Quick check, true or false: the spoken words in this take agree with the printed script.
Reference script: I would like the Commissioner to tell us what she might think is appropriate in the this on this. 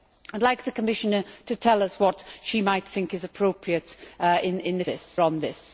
true